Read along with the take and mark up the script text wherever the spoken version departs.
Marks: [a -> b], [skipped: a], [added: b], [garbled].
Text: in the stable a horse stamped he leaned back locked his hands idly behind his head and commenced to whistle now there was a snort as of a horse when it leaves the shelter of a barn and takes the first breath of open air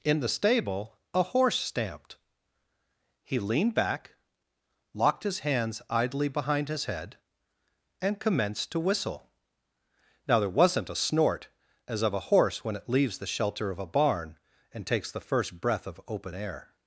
in the stable a horse stamped he leaned back locked his hands idly behind his head and commenced to whistle now there [was -> wasn't] a snort as of a horse when it leaves the shelter of a barn and takes the first breath of open air